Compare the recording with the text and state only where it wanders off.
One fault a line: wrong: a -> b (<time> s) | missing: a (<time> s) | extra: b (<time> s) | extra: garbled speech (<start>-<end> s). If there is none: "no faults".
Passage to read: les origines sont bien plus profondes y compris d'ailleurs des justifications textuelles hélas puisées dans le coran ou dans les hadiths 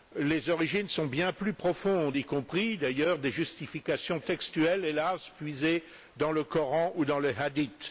no faults